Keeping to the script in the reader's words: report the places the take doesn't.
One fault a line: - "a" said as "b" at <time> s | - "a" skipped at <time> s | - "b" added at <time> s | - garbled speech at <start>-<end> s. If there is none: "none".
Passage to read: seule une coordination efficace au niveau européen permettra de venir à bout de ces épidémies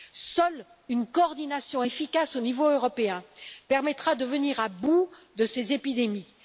none